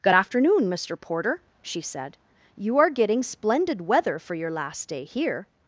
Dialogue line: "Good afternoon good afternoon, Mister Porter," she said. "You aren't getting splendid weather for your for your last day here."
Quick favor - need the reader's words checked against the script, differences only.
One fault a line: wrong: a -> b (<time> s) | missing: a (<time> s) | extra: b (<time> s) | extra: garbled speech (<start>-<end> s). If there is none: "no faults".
missing: good afternoon (0.7 s)
wrong: aren't -> are (2.8 s)
missing: for your (4.5 s)